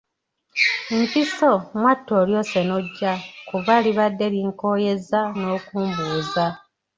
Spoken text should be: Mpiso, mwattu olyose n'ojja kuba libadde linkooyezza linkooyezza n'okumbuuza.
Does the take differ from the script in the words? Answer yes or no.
yes